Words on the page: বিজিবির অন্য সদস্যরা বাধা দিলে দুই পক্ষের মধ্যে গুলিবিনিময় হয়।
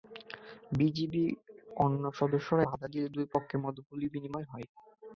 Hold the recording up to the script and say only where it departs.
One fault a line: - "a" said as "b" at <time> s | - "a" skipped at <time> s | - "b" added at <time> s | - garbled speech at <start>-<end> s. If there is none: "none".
none